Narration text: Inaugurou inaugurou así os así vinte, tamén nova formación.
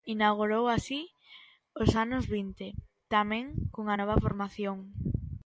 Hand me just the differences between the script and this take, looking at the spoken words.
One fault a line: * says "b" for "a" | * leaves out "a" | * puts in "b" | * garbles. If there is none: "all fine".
* leaves out "inaugurou"
* says "anos" for "así"
* puts in "cunha"